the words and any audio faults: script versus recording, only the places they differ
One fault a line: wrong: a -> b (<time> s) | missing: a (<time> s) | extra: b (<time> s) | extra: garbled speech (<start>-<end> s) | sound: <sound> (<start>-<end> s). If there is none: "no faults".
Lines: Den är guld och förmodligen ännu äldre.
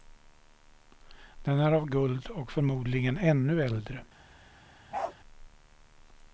extra: av (1.7 s)
sound: bark (4.9-5.2 s)